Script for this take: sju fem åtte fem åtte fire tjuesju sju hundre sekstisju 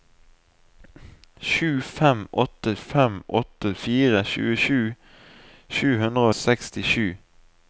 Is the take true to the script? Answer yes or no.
yes